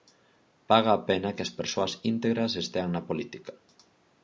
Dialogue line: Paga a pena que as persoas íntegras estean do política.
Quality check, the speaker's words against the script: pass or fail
fail